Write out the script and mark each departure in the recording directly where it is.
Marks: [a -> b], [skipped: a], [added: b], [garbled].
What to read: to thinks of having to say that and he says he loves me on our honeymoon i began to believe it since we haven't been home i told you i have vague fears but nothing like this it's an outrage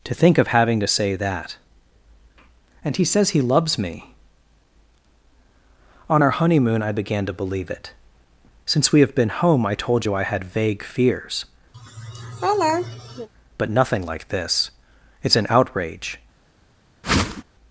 to [thinks -> think] of having to say that and he says he loves me on our honeymoon i began to believe it since we [haven't -> have] been home i told you i [have -> had] vague fears but nothing like this it's an outrage